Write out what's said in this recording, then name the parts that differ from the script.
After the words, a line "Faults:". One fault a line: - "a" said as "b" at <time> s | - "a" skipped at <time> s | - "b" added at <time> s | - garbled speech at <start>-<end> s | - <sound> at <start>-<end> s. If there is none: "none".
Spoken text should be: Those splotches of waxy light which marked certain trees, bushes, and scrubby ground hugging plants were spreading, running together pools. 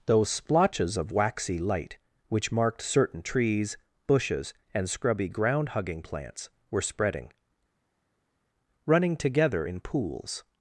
Those splotches of waxy light which marked certain trees, bushes, and scrubby ground hugging plants were spreading, running together in pools.
Faults:
- "in" added at 9.7 s